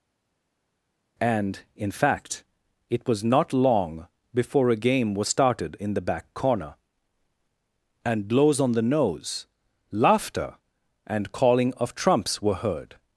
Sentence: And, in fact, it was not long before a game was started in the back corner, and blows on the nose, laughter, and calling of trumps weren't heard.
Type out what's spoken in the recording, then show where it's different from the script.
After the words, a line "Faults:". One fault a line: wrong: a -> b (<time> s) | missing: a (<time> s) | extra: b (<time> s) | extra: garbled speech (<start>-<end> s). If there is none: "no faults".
And, in fact, it was not long before a game was started in the back corner, and blows on the nose, laughter, and calling of trumps were heard.
Faults:
wrong: weren't -> were (12.4 s)